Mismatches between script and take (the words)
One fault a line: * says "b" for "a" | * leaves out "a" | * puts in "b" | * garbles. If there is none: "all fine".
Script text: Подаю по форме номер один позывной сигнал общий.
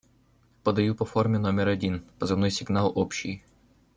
all fine